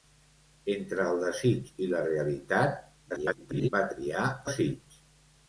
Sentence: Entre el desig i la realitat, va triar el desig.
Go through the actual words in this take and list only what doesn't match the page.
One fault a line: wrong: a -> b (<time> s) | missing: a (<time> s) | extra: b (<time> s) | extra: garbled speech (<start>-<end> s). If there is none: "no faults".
extra: garbled speech (3.1-3.7 s)
missing: el (4.3 s)